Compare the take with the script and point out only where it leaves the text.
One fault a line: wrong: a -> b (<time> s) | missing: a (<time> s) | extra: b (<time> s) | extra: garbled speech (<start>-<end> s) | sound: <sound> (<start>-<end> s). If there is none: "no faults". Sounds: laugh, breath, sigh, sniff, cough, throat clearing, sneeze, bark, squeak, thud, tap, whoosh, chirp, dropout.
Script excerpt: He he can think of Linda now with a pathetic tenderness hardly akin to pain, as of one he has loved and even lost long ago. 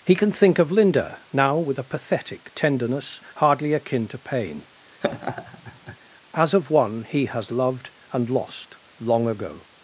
missing: he (0.1 s)
sound: laugh (5.0-6.0 s)
missing: even (8.3 s)